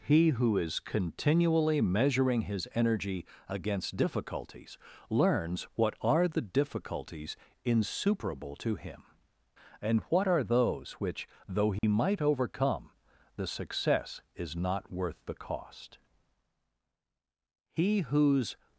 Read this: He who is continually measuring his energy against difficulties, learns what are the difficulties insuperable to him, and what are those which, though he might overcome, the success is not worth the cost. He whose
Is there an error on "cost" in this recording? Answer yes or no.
no